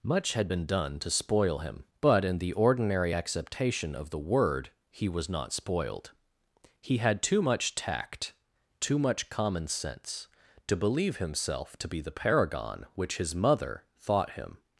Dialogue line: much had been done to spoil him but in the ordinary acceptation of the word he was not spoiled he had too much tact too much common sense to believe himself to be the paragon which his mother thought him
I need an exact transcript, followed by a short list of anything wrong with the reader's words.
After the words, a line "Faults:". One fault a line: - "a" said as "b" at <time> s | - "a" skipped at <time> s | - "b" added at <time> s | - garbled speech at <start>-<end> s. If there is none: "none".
much had been done to spoil him but in the ordinary acceptation of the word he was not spoiled he had too much tact too much common sense to believe himself to be the paragon which his mother thought him
Faults:
none